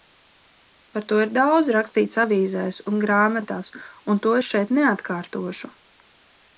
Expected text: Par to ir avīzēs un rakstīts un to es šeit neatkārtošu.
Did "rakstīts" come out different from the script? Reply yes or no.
yes